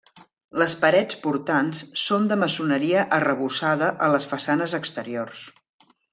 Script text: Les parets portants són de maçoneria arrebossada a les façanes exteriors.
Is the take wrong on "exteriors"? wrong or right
right